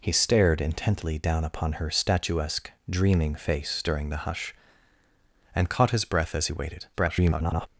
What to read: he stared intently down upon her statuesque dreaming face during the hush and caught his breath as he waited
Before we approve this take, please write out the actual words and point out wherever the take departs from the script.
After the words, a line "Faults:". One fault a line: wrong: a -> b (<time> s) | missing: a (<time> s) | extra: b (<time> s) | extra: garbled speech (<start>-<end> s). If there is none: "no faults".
he stared intently down upon her statuesque dreaming face during the hush and caught his breath as he waited [garbled]
Faults:
extra: garbled speech (6.9-7.7 s)